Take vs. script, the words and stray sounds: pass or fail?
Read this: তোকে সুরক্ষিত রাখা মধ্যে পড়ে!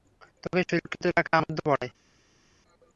pass